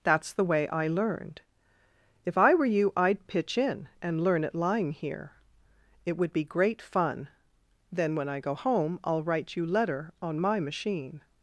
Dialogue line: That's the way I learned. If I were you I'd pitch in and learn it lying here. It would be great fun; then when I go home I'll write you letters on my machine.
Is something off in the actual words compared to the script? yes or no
yes